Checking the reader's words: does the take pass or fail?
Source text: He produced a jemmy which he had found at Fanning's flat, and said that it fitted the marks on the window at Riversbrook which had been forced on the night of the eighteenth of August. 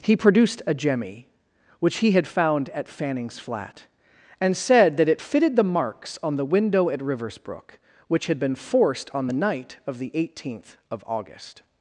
pass